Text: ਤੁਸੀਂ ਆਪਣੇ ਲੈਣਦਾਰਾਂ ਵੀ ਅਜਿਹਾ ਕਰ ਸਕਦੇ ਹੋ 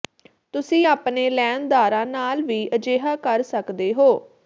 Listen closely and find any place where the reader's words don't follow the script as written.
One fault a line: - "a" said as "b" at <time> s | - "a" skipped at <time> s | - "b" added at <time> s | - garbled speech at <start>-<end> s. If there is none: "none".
- "ਨਾਲ" added at 2.0 s